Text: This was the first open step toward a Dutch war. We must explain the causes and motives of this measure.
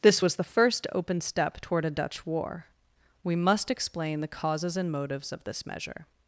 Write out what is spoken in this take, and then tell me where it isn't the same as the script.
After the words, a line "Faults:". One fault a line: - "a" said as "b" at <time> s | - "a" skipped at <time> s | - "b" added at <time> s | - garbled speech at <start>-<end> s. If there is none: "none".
This was the first open step toward a Dutch war. We must explain the causes and motives of this measure.
Faults:
none